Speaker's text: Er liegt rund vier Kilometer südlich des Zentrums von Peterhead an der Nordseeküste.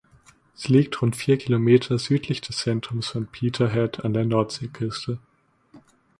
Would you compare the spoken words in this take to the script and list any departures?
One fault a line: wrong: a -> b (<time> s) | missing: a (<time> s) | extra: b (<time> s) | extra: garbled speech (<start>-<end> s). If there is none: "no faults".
wrong: Er -> Sie (0.6 s)